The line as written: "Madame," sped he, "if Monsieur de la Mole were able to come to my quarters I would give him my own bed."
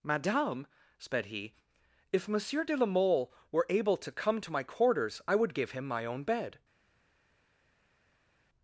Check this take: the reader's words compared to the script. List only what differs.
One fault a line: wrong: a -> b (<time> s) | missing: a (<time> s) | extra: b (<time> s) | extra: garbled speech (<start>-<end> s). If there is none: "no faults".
no faults